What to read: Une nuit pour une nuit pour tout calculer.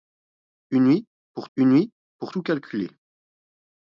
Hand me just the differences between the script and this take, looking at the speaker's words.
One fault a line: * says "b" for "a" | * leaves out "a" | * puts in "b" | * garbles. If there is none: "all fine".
all fine